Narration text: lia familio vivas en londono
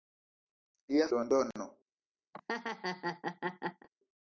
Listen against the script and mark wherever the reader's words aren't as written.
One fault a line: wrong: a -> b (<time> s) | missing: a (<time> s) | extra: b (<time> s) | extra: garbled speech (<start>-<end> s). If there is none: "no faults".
missing: familio vivas en (1.1 s)